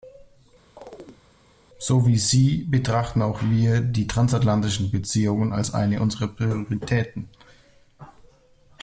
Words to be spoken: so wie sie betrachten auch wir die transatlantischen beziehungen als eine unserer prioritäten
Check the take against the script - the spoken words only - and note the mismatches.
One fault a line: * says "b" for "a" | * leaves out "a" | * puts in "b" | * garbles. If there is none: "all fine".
all fine